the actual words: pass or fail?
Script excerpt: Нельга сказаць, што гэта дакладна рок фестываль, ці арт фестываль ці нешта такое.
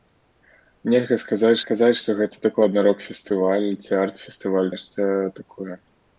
fail